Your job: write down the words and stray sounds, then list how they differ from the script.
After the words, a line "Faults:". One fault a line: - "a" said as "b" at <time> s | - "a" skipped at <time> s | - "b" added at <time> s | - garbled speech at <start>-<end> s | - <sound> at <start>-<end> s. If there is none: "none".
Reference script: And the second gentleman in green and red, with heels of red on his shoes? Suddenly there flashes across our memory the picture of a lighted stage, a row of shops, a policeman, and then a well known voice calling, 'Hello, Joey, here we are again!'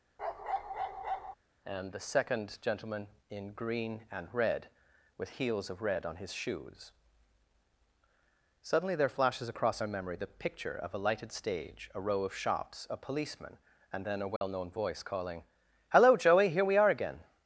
And the second gentleman in green and red, with heels of red on his shoes? Suddenly there flashes across our memory the picture of a lighted stage, a row of shops, a policeman, and then a well known voice calling, 'Hello, Joey, here we are again!'
Faults:
- bark at 0.2-1.4 s
- dropout at 14.4-14.4 s